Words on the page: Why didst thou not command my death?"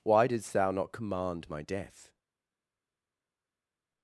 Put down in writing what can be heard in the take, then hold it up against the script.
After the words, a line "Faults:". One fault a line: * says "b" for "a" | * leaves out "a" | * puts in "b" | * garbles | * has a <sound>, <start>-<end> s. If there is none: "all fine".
Why didst thou not command my death?"
Faults:
all fine